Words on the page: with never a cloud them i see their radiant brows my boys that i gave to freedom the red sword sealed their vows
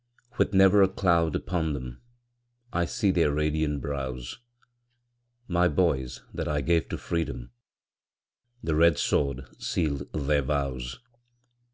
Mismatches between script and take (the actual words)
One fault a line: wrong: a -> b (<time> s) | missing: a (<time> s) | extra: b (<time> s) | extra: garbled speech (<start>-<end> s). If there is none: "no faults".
extra: upon (1.4 s)